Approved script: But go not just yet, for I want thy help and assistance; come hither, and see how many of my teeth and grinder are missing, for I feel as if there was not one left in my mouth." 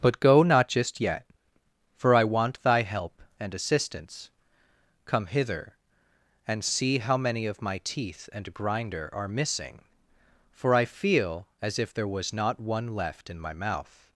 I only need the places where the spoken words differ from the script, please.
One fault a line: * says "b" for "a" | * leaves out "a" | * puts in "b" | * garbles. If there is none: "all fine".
all fine